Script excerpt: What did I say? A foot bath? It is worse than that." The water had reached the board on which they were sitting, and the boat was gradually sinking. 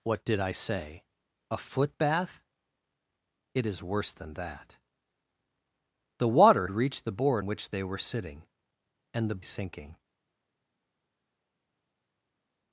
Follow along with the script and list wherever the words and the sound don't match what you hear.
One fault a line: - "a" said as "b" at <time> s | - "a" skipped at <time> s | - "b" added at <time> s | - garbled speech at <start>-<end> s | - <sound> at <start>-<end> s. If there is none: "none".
- "had" skipped at 6.7 s
- "on" skipped at 7.4 s
- "boat was gradually" skipped at 9.4 s